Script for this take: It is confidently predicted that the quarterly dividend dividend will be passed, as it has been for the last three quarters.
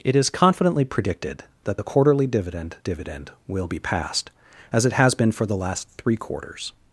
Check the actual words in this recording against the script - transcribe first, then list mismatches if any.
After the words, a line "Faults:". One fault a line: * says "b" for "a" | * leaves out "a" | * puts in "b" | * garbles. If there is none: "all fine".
It is confidently predicted that the quarterly dividend dividend will be passed, as it has been for the last three quarters.
Faults:
all fine